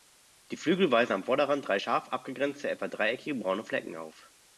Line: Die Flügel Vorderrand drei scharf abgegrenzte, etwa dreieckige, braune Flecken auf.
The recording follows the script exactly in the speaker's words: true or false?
false